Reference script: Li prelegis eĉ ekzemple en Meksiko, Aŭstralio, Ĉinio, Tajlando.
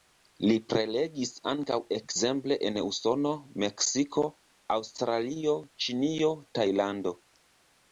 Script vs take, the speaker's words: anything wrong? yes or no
yes